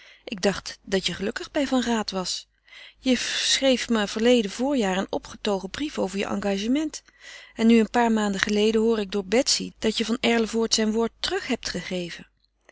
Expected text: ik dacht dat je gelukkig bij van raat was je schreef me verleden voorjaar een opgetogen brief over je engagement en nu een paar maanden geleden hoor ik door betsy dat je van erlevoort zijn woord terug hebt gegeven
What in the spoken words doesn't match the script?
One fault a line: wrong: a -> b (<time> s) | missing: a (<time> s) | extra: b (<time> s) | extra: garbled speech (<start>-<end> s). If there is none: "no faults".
no faults